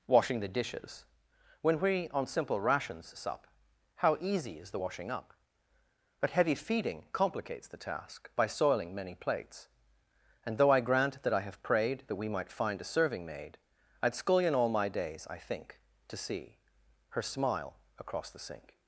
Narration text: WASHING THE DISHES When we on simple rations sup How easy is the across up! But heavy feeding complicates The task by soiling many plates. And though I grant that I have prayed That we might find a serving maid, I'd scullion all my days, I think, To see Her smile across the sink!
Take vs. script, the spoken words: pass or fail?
fail